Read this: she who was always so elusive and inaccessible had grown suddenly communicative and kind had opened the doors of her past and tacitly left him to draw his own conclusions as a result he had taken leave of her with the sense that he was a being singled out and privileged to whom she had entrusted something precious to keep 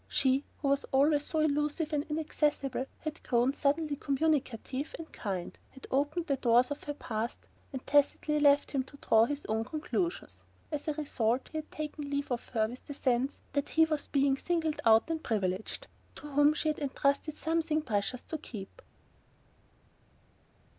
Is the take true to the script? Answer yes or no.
yes